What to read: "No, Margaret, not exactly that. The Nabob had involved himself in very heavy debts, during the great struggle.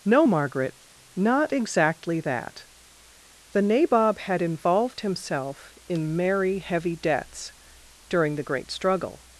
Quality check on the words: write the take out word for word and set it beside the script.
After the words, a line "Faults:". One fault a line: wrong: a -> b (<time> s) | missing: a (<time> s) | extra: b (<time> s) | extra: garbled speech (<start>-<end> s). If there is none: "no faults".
"No, Margaret, not exactly that. The Nabob had involved himself in merry heavy debts, during the great struggle.
Faults:
wrong: very -> merry (6.2 s)